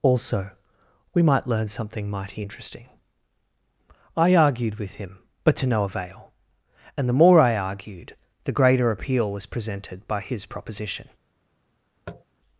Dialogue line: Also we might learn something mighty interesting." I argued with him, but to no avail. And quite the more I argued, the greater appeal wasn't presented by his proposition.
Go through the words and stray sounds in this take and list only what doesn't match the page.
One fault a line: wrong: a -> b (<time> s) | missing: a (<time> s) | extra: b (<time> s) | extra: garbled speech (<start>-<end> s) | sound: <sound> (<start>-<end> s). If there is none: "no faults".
missing: quite (7.1 s)
wrong: wasn't -> was (9.3 s)
sound: tap (12.1-12.2 s)